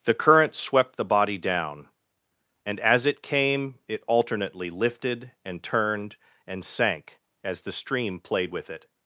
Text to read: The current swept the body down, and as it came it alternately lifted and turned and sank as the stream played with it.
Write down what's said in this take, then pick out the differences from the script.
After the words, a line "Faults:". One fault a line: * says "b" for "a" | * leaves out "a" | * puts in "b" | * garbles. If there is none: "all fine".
The current swept the body down, and as it came it alternately lifted and turned and sank as the stream played with it.
Faults:
all fine